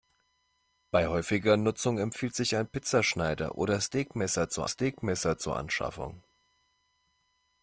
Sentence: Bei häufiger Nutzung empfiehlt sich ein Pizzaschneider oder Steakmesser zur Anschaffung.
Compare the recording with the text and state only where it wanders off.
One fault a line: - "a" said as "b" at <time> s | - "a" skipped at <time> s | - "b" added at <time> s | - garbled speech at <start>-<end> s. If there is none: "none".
- "Steakmesser zur" added at 4.7 s